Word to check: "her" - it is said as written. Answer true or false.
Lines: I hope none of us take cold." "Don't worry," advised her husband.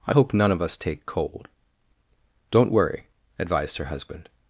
true